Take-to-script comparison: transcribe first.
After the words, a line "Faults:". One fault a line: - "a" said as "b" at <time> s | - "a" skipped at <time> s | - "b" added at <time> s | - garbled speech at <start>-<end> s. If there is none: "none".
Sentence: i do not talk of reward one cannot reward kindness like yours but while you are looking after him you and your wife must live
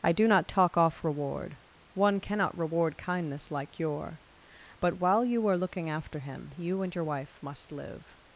i do not talk off reward one cannot reward kindness like your but while you are looking after him you and your wife must live
Faults:
- "of" said as "off" at 0.8 s
- "yours" said as "your" at 3.8 s